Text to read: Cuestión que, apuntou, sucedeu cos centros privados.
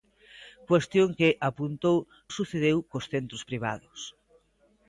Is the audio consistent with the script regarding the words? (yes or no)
yes